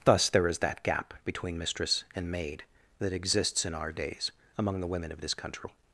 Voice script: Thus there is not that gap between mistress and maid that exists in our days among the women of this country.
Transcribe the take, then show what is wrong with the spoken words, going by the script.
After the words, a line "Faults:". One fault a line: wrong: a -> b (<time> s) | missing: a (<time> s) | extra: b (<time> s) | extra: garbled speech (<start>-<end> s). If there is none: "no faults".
Thus there is that gap between mistress and maid that exists in our days among the women of this country.
Faults:
missing: not (0.6 s)